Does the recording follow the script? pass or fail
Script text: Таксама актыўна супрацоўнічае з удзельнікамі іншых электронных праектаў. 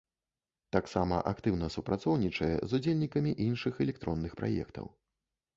pass